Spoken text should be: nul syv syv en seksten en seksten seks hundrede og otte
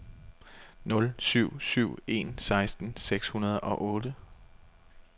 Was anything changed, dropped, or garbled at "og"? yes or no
no